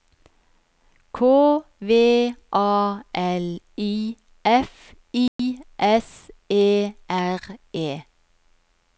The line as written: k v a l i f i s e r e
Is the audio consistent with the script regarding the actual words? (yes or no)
yes